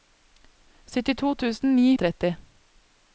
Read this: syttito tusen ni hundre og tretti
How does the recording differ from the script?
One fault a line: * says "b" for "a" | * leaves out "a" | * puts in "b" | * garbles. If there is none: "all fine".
* leaves out "hundre"